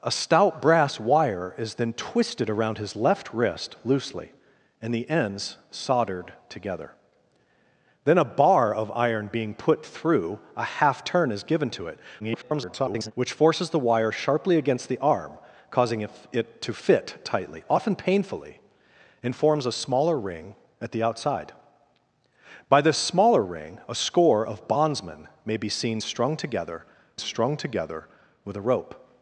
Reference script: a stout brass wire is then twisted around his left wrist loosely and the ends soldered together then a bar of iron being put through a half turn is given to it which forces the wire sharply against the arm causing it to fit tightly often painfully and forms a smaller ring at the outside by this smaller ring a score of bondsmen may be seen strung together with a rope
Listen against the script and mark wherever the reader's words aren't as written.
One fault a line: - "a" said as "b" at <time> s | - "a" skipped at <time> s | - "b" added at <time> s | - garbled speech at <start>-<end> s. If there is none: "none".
- garbled speech at 12.2-13.1 s
- "strung together" added at 27.2 s